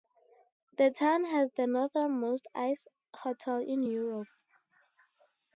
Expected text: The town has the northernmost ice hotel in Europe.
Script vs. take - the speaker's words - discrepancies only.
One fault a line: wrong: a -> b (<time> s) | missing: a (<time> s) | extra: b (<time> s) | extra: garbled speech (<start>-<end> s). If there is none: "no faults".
no faults